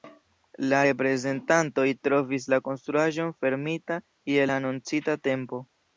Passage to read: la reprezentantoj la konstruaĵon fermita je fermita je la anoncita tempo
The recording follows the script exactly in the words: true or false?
false